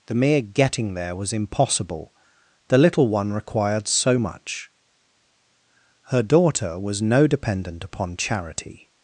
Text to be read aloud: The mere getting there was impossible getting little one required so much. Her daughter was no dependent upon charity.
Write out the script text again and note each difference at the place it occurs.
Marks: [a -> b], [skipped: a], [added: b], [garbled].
The mere getting there was impossible [getting -> the] little one required so much. Her daughter was no dependent upon charity.